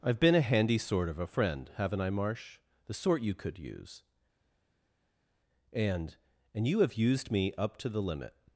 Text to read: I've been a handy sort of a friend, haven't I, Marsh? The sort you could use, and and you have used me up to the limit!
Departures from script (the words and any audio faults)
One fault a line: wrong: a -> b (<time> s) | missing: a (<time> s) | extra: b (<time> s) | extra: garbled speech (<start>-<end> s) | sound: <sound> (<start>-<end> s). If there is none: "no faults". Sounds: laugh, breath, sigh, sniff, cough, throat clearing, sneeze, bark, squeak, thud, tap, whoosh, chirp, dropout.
no faults